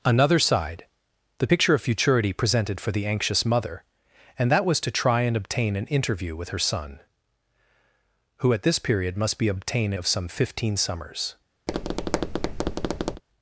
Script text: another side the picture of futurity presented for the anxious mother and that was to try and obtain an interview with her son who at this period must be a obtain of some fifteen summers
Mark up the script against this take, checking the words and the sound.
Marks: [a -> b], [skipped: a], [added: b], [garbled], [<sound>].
another side the picture of futurity presented for the anxious mother and that was to try and obtain an interview with her son who at this period must be a obtain of some fifteen summers [tap]